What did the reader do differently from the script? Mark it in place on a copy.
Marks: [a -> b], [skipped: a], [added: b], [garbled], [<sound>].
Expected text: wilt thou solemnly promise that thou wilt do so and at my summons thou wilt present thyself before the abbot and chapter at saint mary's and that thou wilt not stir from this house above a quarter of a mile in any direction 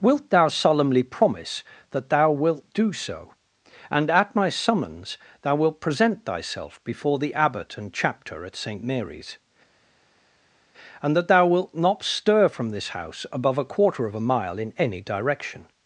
wilt thou solemnly promise that thou wilt do so and at my summons thou wilt present thyself before the abbot and chapter at saint mary's and that thou wilt not stir from this house above a quarter of a mile in any direction